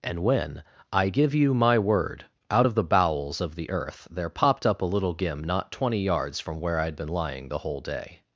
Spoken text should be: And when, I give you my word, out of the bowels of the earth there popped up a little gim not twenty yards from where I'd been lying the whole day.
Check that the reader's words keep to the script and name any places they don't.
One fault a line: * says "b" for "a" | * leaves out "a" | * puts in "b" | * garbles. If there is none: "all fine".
all fine